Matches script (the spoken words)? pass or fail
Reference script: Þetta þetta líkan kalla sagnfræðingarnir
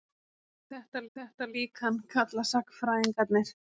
pass